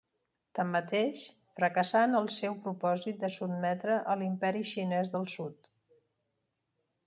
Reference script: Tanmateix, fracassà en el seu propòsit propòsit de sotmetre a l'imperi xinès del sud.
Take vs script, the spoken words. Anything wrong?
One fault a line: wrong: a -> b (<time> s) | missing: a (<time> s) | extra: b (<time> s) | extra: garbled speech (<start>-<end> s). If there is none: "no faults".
missing: propòsit (3.2 s)